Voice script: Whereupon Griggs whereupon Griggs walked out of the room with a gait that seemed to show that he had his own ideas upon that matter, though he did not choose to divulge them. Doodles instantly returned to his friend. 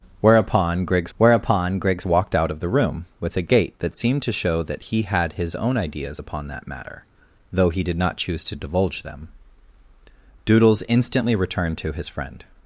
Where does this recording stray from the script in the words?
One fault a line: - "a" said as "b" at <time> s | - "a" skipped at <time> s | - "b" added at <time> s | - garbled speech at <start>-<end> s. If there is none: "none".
none